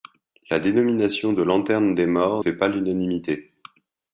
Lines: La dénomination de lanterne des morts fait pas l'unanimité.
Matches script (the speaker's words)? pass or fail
pass